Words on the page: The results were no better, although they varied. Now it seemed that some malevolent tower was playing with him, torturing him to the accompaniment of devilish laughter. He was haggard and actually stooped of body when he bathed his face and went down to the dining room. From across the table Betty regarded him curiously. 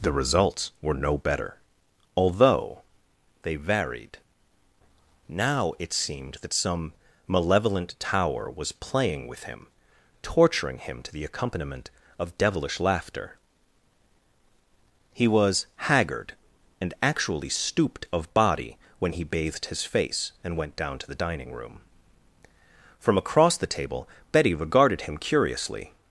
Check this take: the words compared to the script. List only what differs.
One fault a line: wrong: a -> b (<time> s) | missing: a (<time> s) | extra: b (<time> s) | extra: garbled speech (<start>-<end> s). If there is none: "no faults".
no faults